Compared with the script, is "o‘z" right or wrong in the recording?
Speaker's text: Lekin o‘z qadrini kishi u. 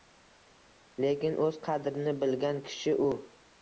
right